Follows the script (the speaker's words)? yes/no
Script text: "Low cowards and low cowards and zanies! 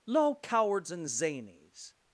no